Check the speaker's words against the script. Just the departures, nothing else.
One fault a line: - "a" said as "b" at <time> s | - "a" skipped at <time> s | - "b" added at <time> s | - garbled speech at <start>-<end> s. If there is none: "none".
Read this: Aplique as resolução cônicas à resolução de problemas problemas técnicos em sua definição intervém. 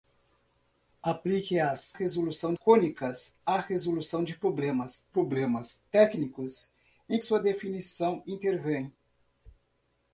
none